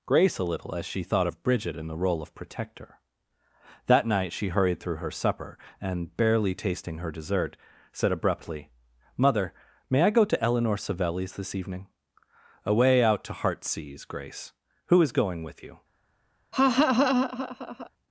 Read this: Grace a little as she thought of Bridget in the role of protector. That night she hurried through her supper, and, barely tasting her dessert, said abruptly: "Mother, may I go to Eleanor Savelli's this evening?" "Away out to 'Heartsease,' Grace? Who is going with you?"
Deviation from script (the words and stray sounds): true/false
true